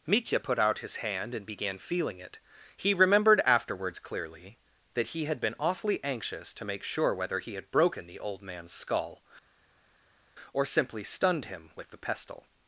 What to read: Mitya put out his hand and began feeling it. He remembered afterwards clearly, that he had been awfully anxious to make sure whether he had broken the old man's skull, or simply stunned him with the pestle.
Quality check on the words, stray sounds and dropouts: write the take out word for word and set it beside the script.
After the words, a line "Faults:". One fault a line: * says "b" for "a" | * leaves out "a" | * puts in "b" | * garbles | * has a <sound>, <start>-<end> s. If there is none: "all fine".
Mitya put out his hand and began feeling it. He remembered afterwards clearly, that he had been awfully anxious to make sure whether he had broken the old man's skull, or simply stunned him with the pestle.
Faults:
all fine